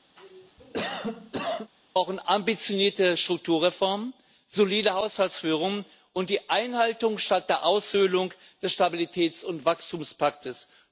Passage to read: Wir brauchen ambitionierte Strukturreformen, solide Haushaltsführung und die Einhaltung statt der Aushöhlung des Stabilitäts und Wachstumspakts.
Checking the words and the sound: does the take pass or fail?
fail